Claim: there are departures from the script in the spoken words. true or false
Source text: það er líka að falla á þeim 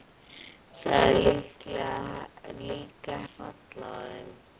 false